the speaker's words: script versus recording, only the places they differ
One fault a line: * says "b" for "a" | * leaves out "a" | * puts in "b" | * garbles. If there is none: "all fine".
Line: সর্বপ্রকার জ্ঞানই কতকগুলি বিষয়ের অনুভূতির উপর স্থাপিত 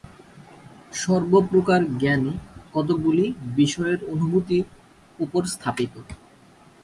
all fine